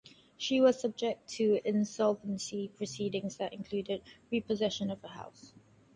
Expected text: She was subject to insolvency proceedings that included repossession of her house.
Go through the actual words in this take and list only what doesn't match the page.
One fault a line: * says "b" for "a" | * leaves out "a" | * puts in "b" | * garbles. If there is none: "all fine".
all fine